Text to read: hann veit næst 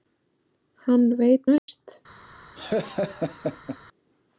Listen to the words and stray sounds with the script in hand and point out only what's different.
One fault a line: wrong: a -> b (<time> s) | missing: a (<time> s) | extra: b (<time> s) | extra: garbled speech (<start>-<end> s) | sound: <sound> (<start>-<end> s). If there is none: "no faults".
sound: dropout (1.6-1.7 s)
sound: laugh (2.6-3.8 s)